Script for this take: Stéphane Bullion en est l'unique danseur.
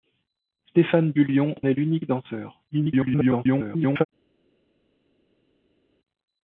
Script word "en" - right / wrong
wrong